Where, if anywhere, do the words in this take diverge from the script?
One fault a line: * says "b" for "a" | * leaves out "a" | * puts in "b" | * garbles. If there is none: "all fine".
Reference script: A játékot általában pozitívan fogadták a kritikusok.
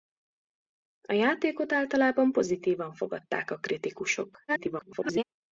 * garbles